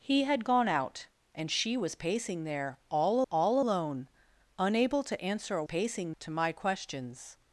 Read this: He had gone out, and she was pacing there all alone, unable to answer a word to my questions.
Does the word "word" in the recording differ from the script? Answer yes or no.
yes